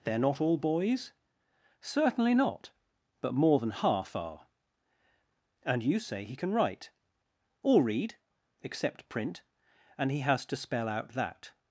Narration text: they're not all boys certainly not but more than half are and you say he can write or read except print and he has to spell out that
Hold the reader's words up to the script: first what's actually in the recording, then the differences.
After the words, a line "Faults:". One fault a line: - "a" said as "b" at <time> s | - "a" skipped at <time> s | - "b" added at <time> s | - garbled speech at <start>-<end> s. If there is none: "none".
they're not all boys certainly not but more than half are and you say he can write or read except print and he has to spell out that
Faults:
none